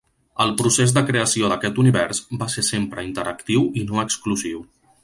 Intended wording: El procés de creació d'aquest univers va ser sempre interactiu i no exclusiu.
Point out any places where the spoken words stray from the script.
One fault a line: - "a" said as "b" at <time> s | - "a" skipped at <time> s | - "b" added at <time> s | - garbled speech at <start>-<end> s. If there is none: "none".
none